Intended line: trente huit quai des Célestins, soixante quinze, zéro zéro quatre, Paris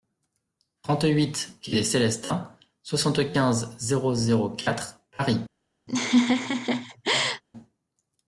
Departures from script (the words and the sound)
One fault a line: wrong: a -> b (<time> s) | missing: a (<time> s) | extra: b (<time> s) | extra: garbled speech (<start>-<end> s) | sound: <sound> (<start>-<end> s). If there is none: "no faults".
sound: laugh (5.9-7.4 s)